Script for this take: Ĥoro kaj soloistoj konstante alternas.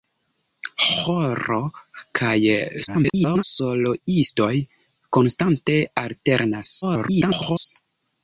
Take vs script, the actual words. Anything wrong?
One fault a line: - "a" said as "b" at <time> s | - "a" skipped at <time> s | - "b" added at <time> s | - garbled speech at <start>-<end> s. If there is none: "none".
- garbled speech at 2.9-3.4 s
- garbled speech at 6.8-7.7 s